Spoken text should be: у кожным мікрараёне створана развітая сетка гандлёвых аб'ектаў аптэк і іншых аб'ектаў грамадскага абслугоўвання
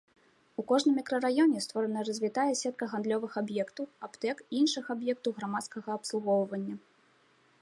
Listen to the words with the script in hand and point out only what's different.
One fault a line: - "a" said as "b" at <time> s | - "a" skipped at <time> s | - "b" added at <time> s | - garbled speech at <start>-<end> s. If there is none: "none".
none